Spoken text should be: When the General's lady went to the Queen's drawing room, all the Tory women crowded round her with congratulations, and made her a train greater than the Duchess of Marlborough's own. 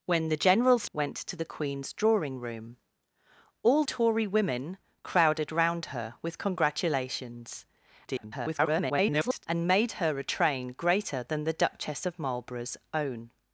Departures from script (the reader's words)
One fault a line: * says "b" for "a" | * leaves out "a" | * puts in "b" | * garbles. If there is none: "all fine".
* leaves out "lady"
* leaves out "the"
* garbles